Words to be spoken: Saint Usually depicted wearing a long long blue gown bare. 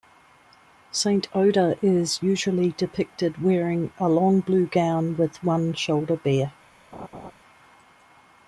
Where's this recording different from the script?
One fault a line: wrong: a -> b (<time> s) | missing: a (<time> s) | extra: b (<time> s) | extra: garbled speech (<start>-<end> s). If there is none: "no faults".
extra: Oda is (1.4 s)
missing: long (4.4 s)
extra: with one shoulder (5.2 s)